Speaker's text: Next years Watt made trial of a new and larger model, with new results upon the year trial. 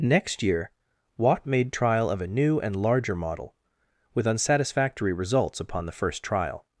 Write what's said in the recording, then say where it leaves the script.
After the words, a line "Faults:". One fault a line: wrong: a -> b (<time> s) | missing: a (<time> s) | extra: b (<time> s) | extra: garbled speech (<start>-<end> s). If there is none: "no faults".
Next year Watt made trial of a new and larger model, with unsatisfactory results upon the first trial.
Faults:
wrong: years -> year (0.4 s)
wrong: new -> unsatisfactory (4.2 s)
wrong: year -> first (5.9 s)